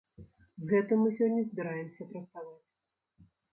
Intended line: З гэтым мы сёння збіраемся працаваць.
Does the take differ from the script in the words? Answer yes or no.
no